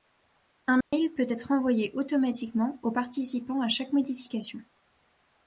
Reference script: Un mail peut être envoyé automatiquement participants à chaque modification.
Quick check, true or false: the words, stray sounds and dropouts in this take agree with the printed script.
false